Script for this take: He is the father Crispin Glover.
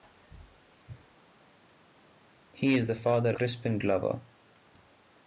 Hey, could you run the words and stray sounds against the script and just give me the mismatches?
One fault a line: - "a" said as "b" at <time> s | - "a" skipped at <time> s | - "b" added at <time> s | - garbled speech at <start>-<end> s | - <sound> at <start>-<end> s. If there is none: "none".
none